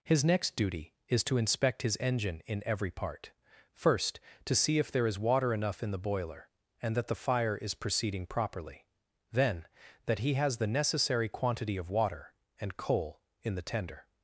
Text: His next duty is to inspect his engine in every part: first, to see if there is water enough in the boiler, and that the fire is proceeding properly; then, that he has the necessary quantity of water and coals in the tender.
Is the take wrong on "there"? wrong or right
right